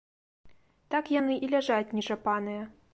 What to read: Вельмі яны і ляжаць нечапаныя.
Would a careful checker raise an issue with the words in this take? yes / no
yes